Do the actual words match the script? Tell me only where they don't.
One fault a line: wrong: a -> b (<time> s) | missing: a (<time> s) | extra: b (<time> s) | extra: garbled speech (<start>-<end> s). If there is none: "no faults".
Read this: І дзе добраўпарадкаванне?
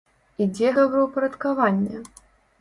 no faults